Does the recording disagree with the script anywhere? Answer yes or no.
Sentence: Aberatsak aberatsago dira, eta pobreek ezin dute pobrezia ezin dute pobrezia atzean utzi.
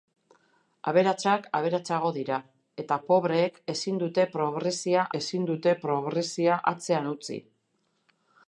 no